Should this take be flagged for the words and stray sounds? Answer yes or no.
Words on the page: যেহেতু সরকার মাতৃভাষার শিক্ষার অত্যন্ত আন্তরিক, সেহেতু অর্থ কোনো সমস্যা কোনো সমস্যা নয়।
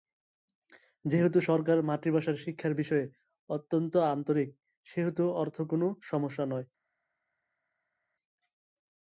yes